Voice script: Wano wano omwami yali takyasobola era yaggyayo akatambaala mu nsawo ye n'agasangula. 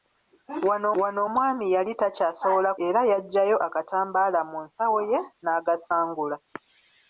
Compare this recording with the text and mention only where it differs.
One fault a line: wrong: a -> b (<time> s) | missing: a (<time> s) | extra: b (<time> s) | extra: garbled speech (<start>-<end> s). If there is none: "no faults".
no faults